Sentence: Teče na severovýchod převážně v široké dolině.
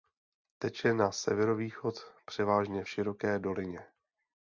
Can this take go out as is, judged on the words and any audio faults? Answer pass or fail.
fail